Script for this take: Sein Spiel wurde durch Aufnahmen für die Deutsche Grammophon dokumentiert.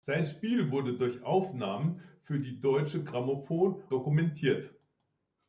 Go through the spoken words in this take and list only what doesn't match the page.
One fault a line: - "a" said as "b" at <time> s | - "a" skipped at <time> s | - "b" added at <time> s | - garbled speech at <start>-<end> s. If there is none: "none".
none